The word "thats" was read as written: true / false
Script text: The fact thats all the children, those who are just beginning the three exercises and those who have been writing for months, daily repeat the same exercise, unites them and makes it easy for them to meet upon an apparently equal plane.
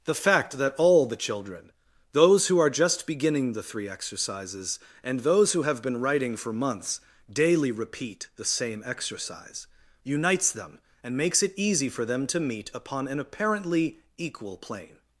false